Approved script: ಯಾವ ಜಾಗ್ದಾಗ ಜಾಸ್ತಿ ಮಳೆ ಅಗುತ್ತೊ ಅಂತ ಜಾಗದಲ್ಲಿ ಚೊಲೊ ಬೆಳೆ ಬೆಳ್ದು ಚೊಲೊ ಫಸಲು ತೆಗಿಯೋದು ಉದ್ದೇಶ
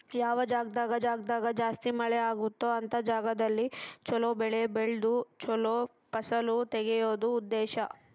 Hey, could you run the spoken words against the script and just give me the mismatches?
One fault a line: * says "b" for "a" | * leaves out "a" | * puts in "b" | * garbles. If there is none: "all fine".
* puts in "ಜಾಗ್ದಾಗ"